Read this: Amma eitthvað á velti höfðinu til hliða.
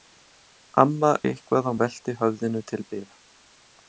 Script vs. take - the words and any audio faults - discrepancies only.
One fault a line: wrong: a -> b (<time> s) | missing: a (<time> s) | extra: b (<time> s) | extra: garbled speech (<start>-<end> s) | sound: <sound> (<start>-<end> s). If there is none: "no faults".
no faults